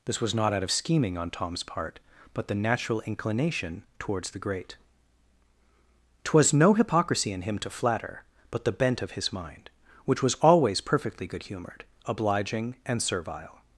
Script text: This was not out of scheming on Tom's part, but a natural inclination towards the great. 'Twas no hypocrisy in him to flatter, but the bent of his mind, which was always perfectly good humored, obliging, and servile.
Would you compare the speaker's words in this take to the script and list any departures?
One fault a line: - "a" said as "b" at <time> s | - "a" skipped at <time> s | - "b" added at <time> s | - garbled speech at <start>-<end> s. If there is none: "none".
- "a" said as "the" at 2.5 s